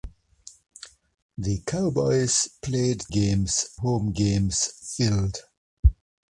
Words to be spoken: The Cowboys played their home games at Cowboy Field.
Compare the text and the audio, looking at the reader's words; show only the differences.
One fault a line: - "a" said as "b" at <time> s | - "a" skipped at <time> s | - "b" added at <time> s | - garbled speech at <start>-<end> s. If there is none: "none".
- "their" said as "games" at 3.1 s
- "at Cowboy" skipped at 4.8 s